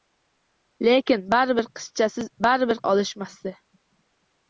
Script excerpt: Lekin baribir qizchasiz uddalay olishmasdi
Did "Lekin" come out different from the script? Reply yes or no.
no